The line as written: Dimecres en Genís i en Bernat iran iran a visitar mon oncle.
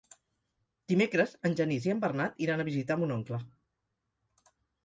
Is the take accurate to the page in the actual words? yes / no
no